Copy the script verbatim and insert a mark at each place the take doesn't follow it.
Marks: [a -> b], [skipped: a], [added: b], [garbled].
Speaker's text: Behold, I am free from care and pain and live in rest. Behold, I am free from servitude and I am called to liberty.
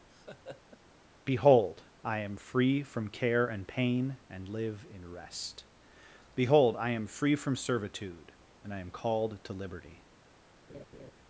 Behold, I am free from care and pain and live in rest. Behold, I am free from servitude and I am called to liberty.